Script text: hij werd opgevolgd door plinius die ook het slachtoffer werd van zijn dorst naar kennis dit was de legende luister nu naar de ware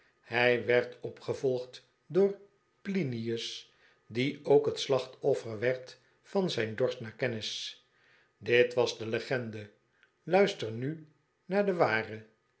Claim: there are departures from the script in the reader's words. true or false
false